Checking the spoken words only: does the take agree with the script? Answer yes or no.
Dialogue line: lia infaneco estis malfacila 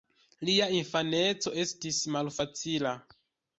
yes